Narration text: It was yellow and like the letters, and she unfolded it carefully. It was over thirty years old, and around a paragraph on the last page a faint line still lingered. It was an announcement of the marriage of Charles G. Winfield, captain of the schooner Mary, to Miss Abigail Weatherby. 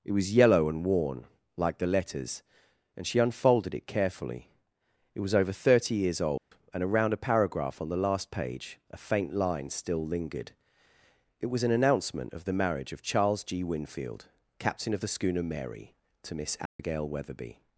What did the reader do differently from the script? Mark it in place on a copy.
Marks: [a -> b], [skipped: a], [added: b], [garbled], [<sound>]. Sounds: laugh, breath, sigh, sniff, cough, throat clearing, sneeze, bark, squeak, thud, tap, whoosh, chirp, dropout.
It was yellow and [added: worn] like the letters, and she unfolded it carefully. It was over thirty years old, [dropout] and around a paragraph on the last page a faint line still lingered. It was an announcement of the marriage of Charles G. Winfield, captain of the schooner Mary, to Miss Abigail [dropout] Weatherby.